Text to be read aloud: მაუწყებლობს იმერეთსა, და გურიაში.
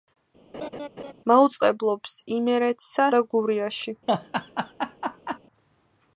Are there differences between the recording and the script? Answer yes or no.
no